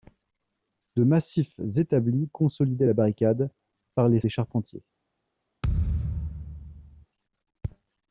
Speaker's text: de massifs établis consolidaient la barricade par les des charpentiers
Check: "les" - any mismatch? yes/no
no